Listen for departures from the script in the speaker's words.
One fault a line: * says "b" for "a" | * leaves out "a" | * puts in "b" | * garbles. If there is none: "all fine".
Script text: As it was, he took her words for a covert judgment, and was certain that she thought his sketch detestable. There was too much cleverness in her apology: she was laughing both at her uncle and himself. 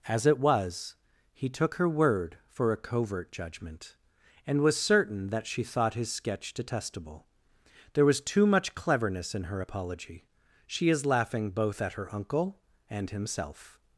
* says "word" for "words"
* says "is" for "was"